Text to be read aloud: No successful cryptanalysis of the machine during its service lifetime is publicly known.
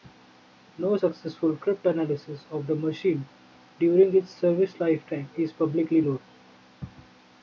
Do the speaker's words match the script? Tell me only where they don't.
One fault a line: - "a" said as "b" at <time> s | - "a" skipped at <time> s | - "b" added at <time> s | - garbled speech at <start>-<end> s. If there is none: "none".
none